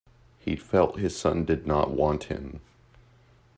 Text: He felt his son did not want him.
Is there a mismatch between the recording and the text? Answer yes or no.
no